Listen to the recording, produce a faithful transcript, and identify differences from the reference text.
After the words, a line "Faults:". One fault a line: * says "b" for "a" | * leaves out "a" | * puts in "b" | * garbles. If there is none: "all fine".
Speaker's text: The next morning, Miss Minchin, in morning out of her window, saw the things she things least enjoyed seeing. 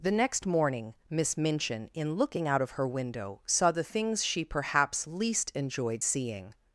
The next morning, Miss Minchin, in looking out of her window, saw the things she perhaps least enjoyed seeing.
Faults:
* says "looking" for "morning"
* says "perhaps" for "things"